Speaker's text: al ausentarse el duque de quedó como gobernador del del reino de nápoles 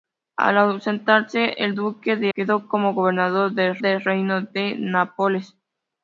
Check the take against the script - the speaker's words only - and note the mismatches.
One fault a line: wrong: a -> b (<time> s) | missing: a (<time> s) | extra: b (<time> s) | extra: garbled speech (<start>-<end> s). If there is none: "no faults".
no faults